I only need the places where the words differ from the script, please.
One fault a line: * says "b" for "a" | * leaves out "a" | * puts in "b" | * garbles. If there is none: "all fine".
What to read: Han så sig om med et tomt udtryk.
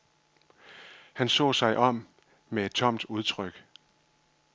all fine